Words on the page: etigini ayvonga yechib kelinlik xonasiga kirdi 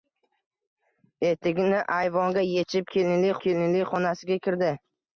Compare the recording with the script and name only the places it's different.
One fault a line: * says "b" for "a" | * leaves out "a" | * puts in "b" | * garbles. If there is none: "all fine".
* puts in "kelinlik"